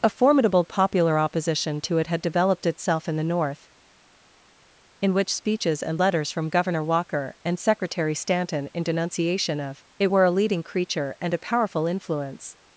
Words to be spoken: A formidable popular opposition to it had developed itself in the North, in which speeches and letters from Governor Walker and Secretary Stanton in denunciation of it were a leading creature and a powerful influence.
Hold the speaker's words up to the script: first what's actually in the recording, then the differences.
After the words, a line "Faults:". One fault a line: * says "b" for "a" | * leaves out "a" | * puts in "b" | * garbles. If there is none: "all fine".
A formidable popular opposition to it had developed itself in the North, in which speeches and letters from Governor Walker and Secretary Stanton in denunciation of it were a leading creature and a powerful influence.
Faults:
all fine